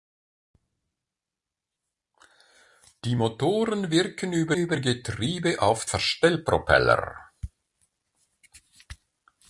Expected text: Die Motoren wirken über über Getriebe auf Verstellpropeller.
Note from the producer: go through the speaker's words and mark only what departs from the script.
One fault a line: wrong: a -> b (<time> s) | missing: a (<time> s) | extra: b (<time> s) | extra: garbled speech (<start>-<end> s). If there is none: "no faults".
no faults